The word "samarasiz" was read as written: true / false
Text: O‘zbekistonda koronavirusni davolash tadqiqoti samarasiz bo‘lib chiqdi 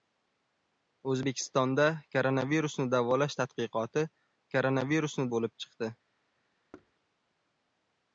false